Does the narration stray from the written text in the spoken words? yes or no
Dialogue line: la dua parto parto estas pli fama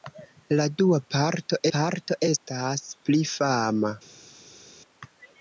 no